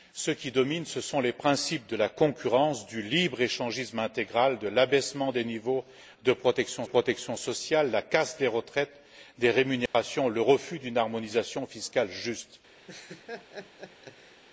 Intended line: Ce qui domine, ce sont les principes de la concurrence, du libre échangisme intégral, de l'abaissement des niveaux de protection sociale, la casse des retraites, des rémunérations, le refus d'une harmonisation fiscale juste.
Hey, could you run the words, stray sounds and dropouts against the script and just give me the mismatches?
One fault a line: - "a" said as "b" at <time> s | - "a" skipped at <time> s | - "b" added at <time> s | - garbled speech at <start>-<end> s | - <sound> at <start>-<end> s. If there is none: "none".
- "protection" added at 6.8 s
- dropout at 9.9-9.9 s
- laugh at 12.9-14.4 s